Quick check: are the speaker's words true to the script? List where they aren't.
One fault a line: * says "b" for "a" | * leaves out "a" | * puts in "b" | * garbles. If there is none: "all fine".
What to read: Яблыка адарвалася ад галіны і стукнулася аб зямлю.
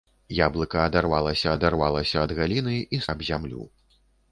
* puts in "адарвалася"
* leaves out "стукнулася"